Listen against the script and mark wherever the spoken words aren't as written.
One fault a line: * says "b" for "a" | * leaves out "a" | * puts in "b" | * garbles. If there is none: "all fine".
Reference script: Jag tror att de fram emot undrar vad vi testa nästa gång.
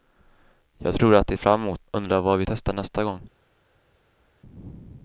all fine